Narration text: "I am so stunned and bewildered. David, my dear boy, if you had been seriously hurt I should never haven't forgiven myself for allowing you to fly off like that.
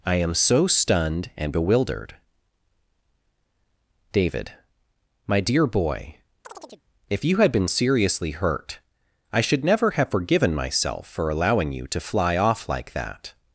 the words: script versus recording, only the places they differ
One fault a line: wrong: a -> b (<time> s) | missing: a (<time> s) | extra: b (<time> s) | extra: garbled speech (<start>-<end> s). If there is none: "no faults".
wrong: haven't -> have (9.9 s)